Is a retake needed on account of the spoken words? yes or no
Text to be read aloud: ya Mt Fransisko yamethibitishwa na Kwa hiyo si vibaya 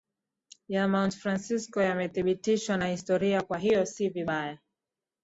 yes